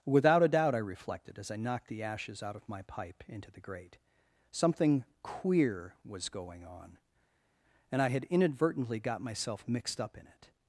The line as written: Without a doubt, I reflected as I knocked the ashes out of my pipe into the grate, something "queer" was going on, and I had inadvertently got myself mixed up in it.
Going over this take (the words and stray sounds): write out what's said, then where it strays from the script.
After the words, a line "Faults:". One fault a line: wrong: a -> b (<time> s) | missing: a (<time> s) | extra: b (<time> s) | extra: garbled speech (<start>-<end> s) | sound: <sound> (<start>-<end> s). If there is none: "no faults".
Without a doubt, I reflected as I knocked the ashes out of my pipe into the grate, something "queer" was going on, and I had inadvertently got myself mixed up in it.
Faults:
no faults